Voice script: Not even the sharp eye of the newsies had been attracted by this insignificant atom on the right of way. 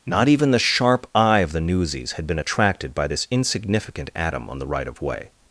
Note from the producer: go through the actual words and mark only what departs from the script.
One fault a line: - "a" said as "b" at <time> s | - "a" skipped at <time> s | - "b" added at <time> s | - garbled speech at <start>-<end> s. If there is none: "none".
none